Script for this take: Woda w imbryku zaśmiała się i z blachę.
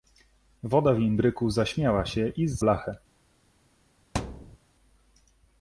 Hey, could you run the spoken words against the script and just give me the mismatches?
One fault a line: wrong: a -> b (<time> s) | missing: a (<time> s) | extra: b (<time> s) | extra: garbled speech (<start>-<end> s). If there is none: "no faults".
no faults